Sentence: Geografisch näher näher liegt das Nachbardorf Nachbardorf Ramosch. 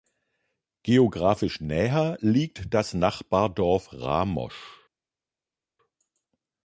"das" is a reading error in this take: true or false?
false